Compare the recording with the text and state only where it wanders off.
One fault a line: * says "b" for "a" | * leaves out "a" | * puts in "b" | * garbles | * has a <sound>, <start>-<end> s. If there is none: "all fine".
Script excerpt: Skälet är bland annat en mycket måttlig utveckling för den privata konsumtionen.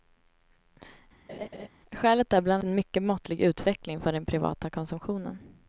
* has a laugh, 1.3-1.7 s
* leaves out "annat"